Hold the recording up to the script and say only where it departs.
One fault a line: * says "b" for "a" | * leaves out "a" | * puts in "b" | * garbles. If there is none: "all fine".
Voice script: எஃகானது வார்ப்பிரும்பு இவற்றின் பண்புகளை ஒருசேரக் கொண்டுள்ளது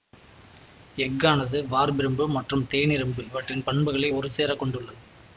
* puts in "மற்றும் தேனிரும்பு"